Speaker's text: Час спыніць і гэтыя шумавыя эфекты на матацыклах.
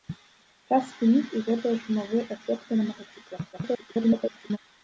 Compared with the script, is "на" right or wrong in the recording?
right